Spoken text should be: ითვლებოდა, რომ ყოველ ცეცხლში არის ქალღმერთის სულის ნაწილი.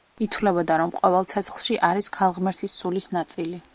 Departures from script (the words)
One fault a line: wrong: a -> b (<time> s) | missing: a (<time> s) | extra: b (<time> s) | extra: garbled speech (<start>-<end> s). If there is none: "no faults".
no faults